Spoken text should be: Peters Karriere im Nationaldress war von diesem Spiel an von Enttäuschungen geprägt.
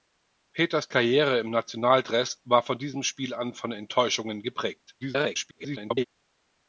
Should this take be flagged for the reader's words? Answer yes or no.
yes